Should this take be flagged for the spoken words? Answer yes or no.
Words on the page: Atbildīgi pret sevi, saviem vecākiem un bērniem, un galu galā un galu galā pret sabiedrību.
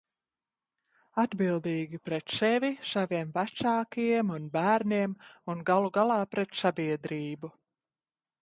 yes